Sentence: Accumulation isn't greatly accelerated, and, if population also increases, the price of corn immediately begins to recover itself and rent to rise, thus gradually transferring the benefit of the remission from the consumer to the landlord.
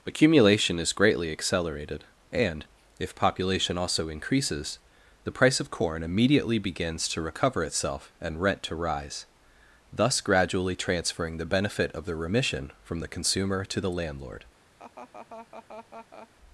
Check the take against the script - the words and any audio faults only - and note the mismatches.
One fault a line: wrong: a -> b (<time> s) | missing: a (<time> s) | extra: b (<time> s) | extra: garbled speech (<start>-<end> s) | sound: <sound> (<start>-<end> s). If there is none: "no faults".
wrong: isn't -> is (0.8 s)
sound: laugh (14.8-16.3 s)